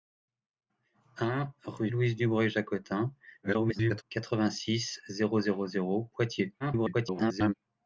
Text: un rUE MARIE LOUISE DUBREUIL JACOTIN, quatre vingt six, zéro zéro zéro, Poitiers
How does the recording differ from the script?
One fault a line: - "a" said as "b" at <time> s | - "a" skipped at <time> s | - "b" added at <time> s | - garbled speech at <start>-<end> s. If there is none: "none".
- "MARIE" skipped at 1.9 s
- garbled speech at 3.4-4.0 s
- garbled speech at 6.6-7.5 s